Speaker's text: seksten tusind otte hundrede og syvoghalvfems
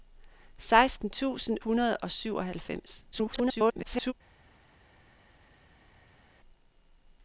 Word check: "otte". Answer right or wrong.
wrong